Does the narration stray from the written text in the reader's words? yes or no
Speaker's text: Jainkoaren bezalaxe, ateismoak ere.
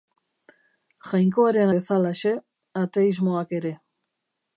no